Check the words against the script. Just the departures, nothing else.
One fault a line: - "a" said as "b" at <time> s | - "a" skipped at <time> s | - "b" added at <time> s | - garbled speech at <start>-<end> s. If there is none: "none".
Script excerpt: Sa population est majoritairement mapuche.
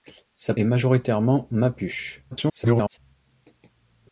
- "population" skipped at 0.6 s
- garbled speech at 2.3-3.0 s